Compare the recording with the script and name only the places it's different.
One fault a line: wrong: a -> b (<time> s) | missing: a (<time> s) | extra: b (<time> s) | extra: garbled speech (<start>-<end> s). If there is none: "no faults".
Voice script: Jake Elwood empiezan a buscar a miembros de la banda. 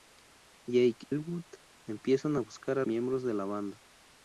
no faults